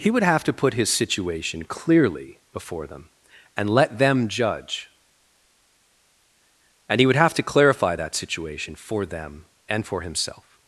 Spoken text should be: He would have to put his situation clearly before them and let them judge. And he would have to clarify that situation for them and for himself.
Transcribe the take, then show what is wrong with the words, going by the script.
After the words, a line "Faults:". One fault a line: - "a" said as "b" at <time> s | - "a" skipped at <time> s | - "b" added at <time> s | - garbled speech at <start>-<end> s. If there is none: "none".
He would have to put his situation clearly before them and let them judge. And he would have to clarify that situation for them and for himself.
Faults:
none